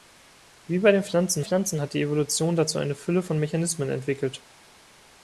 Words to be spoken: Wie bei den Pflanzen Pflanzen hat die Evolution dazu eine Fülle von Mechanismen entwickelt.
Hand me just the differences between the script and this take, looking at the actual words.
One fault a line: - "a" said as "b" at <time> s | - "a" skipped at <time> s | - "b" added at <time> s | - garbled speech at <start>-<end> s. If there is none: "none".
none